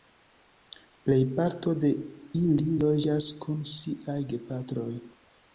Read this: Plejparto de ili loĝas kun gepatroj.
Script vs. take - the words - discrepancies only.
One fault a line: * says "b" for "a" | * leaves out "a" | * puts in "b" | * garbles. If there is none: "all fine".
* puts in "siaj"